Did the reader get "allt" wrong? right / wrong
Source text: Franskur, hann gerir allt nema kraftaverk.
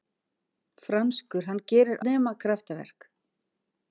wrong